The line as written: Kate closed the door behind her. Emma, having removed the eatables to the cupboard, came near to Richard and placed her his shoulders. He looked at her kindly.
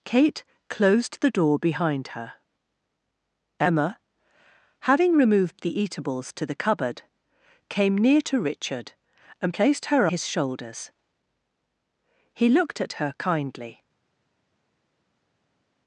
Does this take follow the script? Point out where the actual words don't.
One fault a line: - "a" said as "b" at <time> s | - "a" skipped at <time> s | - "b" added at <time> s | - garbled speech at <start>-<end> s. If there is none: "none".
none